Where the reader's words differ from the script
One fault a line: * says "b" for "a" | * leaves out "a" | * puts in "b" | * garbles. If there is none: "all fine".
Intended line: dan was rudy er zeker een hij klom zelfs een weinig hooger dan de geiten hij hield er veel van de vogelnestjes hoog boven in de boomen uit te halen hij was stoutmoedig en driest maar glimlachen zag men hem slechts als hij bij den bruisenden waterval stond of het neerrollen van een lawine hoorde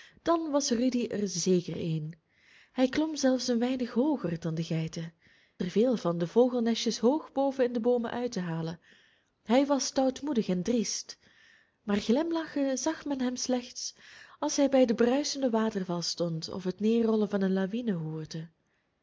* leaves out "hij hield"